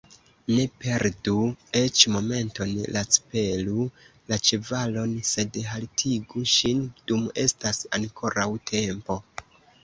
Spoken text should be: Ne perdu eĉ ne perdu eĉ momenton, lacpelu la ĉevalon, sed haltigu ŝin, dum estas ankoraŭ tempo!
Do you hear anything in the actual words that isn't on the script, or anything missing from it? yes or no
yes